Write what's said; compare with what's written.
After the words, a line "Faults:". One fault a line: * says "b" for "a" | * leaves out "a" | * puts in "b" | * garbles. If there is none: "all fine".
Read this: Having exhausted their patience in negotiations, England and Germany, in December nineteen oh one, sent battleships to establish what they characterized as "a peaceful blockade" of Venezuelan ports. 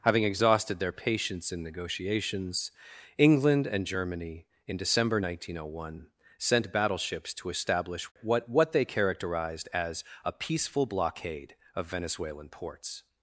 Having exhausted their patience in negotiations, England and Germany, in December nineteen oh one, sent battleships to establish what what they characterized as "a peaceful blockade" of Venezuelan ports.
Faults:
* puts in "what"